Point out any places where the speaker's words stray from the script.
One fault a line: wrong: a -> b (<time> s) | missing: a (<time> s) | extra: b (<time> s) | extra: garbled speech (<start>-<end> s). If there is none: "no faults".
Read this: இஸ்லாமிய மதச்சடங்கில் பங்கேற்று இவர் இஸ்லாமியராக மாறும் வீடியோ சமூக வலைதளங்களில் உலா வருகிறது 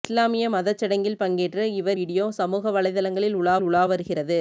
missing: இஸ்லாமியராக மாறும் (2.0 s)
extra: உலா (3.6 s)